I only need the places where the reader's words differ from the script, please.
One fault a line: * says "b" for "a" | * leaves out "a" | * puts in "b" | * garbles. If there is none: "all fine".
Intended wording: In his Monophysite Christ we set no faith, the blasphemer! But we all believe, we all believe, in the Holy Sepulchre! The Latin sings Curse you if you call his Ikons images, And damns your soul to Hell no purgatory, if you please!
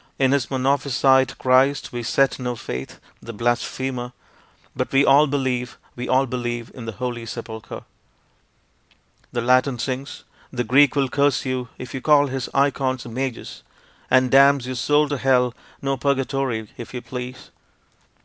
* puts in "The Greek will"